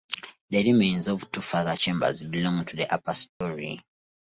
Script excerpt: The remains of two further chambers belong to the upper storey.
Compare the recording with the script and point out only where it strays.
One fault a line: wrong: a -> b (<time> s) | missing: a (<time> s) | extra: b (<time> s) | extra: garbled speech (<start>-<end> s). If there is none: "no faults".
no faults